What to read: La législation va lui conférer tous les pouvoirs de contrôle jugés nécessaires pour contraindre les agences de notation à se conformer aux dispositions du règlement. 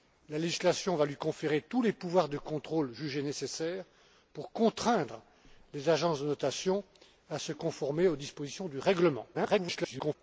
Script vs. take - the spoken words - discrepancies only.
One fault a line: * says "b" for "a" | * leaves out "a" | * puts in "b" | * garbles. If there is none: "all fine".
* garbles